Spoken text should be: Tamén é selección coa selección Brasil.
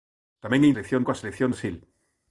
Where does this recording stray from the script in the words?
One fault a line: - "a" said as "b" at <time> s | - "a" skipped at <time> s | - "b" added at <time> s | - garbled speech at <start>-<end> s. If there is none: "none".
none